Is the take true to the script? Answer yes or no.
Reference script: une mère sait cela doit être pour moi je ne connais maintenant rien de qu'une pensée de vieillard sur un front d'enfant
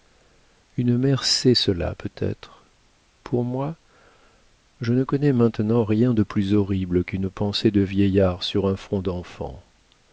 no